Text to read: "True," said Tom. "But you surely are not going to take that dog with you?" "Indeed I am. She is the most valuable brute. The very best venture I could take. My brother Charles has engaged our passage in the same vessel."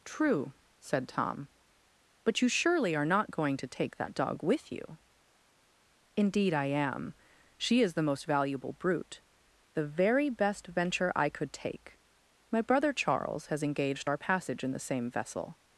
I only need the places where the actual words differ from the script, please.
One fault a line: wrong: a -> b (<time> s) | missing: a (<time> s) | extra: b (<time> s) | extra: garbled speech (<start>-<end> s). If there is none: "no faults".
no faults